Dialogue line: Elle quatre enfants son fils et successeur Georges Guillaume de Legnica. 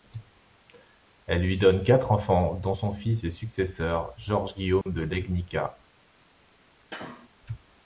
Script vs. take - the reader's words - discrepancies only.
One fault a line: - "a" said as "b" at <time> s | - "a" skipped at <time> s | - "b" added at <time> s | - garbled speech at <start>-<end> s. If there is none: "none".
- "lui donne" added at 1.4 s
- "dont" added at 2.5 s